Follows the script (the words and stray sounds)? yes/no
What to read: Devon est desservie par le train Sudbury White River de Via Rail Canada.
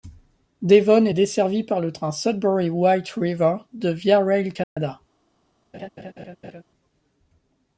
no